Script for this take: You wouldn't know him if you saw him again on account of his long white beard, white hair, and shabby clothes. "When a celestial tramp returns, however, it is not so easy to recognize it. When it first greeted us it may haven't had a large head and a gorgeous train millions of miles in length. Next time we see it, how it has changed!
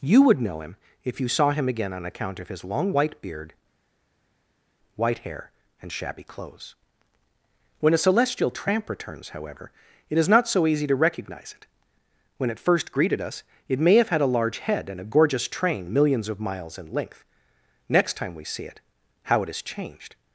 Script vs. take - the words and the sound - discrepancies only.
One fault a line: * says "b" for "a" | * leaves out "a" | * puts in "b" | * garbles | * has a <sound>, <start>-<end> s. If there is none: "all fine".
* says "would" for "wouldn't"
* says "have" for "haven't"